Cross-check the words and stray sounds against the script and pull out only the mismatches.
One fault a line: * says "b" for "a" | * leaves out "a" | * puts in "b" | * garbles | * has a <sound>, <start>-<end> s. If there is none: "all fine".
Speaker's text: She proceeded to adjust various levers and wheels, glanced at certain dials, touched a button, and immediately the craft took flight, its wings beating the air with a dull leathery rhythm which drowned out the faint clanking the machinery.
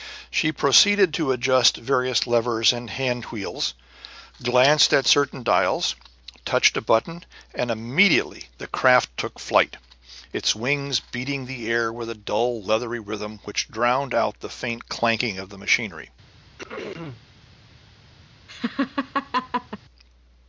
* puts in "hand"
* puts in "of"
* has a throat clearing, 16.6-17.2 s
* has a laugh, 18.5-19.8 s